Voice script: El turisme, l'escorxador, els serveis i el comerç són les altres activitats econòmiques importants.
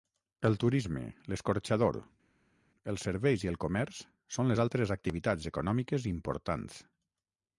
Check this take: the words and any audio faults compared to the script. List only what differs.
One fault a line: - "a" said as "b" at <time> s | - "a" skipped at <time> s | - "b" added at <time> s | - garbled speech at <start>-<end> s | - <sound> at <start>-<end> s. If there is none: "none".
none